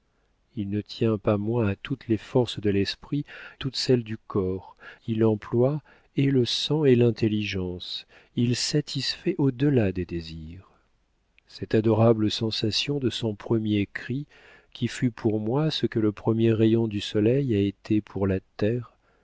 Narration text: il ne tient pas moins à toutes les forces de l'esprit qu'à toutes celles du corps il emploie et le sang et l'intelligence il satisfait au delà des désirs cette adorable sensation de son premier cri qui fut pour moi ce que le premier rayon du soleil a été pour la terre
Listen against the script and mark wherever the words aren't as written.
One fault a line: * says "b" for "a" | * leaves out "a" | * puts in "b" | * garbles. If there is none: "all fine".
* leaves out "qu'à"